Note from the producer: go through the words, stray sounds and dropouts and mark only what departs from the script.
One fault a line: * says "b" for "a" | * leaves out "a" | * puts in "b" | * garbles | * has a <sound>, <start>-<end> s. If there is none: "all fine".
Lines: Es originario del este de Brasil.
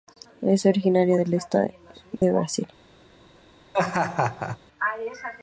* has a dropout, 2.2-2.2 s
* has a laugh, 3.7-4.6 s